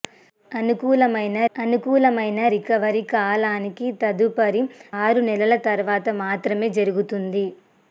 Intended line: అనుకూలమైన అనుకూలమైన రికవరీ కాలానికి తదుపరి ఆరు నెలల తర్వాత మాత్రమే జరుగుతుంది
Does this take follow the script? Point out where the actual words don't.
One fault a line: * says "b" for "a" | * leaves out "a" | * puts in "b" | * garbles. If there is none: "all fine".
all fine